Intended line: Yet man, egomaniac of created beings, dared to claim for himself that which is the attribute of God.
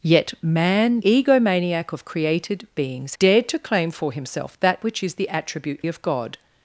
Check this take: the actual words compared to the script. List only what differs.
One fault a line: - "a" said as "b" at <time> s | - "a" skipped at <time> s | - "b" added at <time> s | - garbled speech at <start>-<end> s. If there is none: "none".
none